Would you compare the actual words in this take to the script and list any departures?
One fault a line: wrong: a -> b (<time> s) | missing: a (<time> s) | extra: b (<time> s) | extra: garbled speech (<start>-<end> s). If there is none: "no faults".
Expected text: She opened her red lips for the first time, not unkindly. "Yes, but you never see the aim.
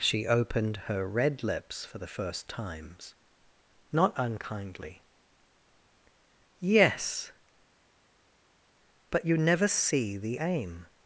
wrong: time -> times (2.5 s)